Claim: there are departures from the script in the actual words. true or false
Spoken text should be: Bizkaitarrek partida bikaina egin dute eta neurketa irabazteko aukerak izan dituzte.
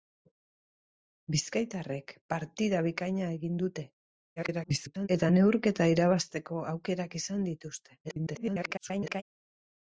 true